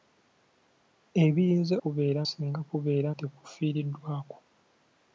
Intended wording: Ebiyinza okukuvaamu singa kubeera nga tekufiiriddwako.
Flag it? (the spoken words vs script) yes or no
yes